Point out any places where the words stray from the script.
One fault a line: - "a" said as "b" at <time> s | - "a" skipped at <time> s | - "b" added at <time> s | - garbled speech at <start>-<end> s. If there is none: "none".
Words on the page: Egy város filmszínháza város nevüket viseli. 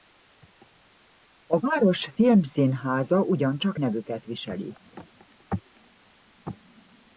- "Egy" said as "A" at 1.4 s
- "város" said as "ugyancsak" at 3.2 s